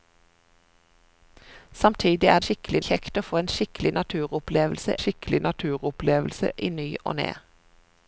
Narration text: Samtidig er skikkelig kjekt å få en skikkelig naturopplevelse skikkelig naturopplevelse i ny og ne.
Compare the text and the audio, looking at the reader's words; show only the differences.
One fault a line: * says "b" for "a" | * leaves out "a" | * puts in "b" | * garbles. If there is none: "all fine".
all fine